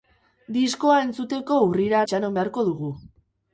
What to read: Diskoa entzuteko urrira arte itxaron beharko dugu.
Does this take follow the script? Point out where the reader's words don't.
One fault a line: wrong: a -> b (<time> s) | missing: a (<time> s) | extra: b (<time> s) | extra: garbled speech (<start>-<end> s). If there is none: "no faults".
missing: arte (2.0 s)